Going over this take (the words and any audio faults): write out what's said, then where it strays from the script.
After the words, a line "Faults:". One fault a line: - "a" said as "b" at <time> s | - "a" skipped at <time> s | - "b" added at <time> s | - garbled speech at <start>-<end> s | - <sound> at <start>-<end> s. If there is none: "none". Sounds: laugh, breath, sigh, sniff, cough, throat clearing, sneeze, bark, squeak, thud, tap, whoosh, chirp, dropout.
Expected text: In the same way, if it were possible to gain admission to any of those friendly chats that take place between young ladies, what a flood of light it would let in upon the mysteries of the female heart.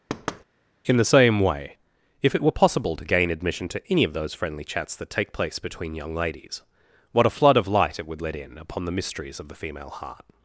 In the same way, if it were possible to gain admission to any of those friendly chats that take place between young ladies, what a flood of light it would let in upon the mysteries of the female heart.
Faults:
- thud at 0.1-0.4 s